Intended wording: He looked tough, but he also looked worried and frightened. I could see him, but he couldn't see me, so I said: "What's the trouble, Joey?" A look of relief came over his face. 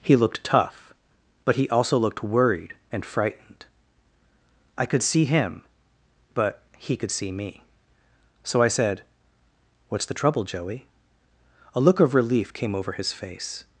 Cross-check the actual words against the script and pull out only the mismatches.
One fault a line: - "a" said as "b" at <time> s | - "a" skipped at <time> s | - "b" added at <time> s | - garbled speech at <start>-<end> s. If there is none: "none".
- "couldn't" said as "could" at 7.0 s